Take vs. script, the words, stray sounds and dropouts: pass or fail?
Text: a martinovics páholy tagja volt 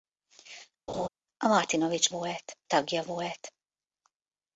fail